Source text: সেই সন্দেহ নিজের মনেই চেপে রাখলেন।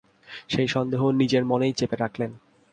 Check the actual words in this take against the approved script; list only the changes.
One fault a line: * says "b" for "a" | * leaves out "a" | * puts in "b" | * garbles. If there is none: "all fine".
all fine